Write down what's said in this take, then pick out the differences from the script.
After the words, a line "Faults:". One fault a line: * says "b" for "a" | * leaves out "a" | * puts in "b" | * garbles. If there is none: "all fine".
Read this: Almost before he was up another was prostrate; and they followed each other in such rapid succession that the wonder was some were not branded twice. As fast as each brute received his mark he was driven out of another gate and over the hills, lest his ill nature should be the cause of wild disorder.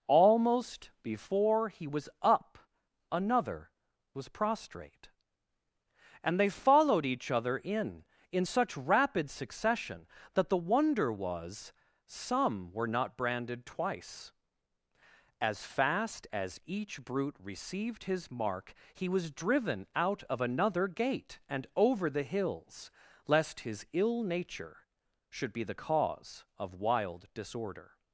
Almost before he was up another was prostrate; and they followed each other in in such rapid succession that the wonder was some were not branded twice. As fast as each brute received his mark he was driven out of another gate and over the hills, lest his ill nature should be the cause of wild disorder.
Faults:
* puts in "in"